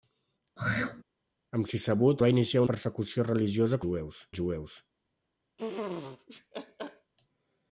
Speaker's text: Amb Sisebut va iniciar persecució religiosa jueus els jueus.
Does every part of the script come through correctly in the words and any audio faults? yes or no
no